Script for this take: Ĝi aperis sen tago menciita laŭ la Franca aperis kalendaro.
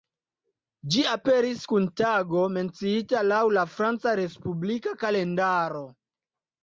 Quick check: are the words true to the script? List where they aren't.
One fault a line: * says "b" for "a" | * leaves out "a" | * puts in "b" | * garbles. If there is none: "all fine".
* says "kun" for "sen"
* says "respublika" for "aperis"